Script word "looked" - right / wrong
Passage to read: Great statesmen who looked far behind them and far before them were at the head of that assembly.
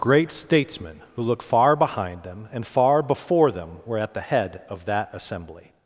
wrong